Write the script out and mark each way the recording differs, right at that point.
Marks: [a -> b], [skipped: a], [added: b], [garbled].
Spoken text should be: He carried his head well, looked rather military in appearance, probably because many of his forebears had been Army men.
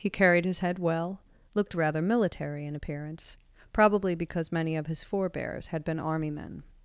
He carried his head well, looked rather military in appearance, probably because many of his forebears had been Army men.